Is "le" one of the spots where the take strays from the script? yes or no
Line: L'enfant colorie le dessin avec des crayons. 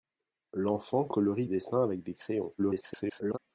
yes